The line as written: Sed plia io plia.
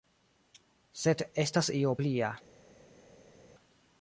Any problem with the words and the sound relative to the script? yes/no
yes